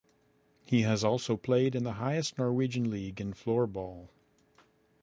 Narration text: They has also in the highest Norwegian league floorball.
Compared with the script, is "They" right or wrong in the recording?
wrong